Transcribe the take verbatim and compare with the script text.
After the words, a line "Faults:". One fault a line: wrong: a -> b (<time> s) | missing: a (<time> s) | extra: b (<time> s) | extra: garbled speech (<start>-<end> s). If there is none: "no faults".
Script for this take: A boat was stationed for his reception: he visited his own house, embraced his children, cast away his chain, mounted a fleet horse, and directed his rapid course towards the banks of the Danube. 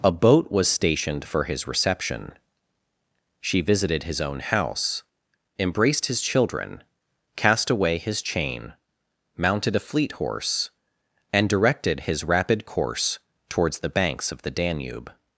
A boat was stationed for his reception: she visited his own house, embraced his children, cast away his chain, mounted a fleet horse, and directed his rapid course towards the banks of the Danube.
Faults:
wrong: he -> she (3.4 s)